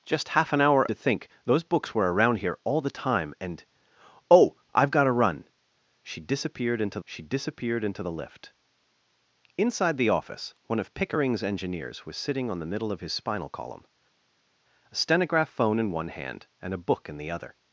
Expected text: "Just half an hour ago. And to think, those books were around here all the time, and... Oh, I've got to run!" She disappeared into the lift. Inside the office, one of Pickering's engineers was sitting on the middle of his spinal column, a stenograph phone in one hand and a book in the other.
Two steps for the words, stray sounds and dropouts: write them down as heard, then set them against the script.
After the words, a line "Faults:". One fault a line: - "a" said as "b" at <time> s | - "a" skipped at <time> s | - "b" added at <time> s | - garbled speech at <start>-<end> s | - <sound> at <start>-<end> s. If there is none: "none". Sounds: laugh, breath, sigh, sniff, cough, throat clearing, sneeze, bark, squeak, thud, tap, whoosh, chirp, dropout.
"Just half an hour to think, those books were around here all the time, and... Oh, I've got to run!" She disappeared into she disappeared into the lift. Inside the office, one of Pickering's engineers was sitting on the middle of his spinal column, a stenograph phone in one hand and a book in the other.
Faults:
- "ago And" skipped at 0.9 s
- "she disappeared into" added at 7.0 s